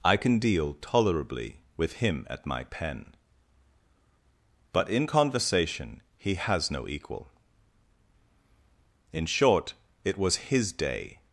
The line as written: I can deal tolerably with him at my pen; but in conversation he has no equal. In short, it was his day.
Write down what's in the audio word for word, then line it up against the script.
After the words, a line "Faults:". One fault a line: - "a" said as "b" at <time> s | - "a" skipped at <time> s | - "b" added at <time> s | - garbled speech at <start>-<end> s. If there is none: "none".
I can deal tolerably with him at my pen; but in conversation he has no equal. In short, it was his day.
Faults:
none